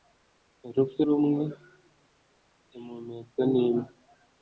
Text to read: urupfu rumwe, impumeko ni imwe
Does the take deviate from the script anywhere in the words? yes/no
no